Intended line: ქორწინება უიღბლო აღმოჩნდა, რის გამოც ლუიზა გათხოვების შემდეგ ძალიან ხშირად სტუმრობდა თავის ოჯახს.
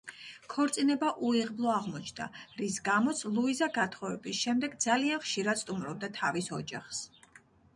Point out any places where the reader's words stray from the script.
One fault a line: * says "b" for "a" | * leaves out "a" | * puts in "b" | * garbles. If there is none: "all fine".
all fine